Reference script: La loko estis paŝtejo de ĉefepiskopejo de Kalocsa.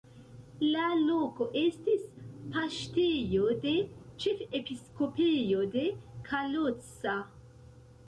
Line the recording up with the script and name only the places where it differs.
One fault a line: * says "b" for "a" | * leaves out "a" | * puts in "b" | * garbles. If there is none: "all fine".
all fine